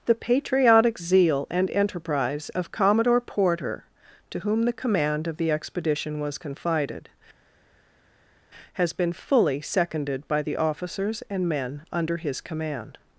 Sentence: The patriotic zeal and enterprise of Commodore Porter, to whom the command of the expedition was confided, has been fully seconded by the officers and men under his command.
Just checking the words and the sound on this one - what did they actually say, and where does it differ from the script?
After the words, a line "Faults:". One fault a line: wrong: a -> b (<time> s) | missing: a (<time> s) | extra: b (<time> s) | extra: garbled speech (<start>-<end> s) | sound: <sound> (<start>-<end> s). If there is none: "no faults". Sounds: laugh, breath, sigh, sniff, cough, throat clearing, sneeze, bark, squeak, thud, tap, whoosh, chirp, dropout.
The patriotic zeal and enterprise of Commodore Porter, to whom the command of the expedition was confided, has been fully seconded by the officers and men under his command.
Faults:
no faults